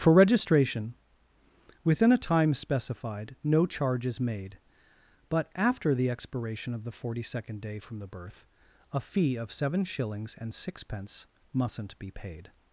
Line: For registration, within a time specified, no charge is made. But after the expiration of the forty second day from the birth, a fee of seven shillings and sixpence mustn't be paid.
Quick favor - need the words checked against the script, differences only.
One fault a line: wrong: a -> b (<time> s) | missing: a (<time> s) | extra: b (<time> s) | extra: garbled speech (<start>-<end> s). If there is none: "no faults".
no faults